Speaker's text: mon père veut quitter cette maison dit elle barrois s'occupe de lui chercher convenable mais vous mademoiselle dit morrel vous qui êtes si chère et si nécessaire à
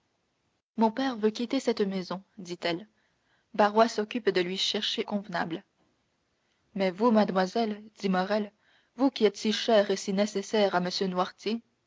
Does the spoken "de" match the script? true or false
true